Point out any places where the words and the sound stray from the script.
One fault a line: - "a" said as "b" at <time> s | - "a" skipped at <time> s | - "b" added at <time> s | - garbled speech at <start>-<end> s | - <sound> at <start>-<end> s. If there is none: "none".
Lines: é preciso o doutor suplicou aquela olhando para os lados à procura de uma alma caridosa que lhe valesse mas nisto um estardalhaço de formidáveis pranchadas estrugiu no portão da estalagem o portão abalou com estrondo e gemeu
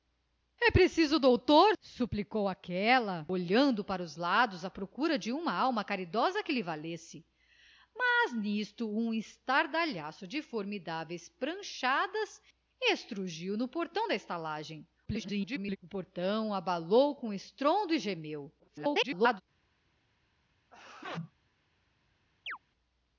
- garbled speech at 15.1-15.8 s
- garbled speech at 18.6-19.4 s
- sneeze at 20.7-21.3 s
- chirp at 22.5-22.6 s